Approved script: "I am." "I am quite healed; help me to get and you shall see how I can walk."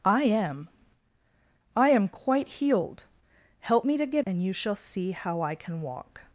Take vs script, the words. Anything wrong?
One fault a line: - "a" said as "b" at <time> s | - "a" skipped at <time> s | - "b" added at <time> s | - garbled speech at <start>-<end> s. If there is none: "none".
none